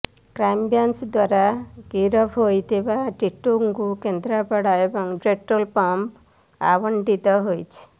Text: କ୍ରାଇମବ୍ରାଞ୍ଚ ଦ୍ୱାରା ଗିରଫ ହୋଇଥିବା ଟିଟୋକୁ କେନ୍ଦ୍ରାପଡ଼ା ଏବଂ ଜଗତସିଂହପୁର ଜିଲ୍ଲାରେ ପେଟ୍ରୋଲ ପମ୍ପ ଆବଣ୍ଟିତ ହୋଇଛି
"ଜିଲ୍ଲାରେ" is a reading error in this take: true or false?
true